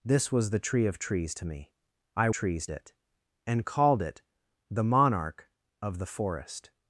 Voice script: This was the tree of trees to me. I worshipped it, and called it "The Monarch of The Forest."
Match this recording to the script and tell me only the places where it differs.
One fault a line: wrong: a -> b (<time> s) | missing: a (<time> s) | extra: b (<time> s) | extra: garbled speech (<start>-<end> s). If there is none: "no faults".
wrong: worshipped -> trees (2.3 s)